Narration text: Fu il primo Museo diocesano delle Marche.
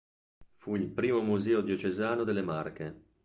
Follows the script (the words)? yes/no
yes